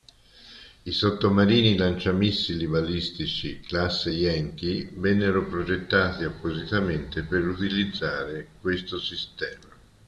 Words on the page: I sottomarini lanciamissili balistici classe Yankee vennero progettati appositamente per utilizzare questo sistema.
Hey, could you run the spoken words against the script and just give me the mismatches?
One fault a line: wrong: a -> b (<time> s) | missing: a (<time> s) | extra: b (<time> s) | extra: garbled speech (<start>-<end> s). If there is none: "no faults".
no faults